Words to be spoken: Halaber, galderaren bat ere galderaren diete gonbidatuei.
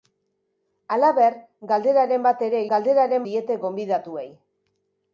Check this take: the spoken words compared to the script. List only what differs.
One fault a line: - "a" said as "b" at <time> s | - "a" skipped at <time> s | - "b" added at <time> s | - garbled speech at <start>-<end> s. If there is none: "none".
none